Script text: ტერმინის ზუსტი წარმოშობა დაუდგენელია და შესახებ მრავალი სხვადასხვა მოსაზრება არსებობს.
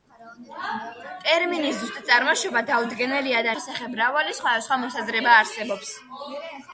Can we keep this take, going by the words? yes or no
yes